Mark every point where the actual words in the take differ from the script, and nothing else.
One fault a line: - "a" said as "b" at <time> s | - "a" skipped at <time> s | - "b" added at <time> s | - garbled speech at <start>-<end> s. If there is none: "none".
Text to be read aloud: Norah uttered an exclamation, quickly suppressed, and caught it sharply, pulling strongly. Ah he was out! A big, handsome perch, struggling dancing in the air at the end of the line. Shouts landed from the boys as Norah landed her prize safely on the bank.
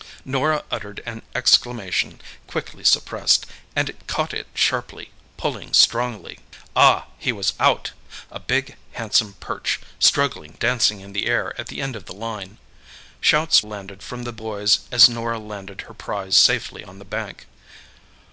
none